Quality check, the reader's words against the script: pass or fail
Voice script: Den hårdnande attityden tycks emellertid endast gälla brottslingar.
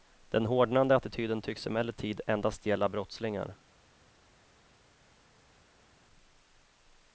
pass